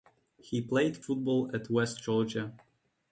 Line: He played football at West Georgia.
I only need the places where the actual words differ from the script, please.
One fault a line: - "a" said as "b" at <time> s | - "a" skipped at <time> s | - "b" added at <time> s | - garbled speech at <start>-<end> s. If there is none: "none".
none